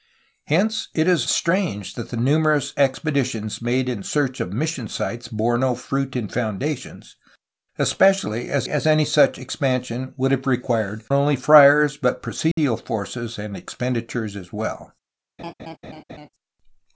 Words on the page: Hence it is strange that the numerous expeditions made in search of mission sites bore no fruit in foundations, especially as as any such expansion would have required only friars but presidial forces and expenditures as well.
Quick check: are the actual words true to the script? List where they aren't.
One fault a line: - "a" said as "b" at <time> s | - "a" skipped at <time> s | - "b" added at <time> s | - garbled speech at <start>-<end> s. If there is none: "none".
none